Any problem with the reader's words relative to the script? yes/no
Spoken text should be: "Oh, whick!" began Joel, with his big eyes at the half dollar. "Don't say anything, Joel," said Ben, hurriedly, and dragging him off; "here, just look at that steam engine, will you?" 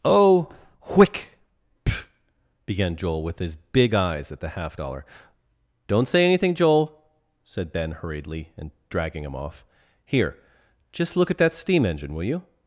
no